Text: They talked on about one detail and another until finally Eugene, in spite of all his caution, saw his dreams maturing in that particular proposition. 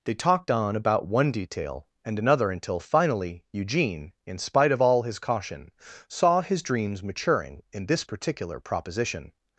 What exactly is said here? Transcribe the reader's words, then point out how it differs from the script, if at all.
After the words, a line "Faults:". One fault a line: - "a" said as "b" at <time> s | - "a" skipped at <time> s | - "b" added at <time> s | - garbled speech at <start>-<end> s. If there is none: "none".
They talked on about one detail and another until finally Eugene, in spite of all his caution, saw his dreams maturing in this particular proposition.
Faults:
- "that" said as "this" at 7.8 s